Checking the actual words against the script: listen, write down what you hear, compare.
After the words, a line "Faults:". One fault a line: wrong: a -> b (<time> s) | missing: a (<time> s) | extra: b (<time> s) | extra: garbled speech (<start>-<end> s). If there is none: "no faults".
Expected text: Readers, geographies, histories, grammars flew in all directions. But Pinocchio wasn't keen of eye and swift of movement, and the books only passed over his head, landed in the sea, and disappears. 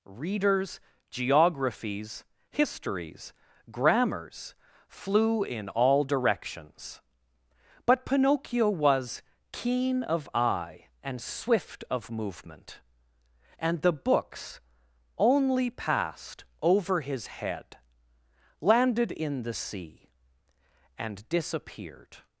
Readers, geographies, histories, grammars flew in all directions. But Pinocchio was keen of eye and swift of movement, and the books only passed over his head, landed in the sea, and disappeared.
Faults:
wrong: wasn't -> was (8.7 s)
wrong: disappears -> disappeared (21.3 s)